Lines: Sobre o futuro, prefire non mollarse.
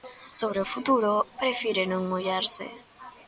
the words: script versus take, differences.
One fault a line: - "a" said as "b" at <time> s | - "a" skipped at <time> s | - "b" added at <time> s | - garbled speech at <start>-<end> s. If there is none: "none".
none